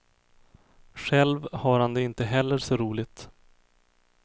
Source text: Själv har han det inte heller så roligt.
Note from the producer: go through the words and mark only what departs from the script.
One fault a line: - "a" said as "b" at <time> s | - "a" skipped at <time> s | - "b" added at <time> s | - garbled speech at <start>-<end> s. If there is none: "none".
none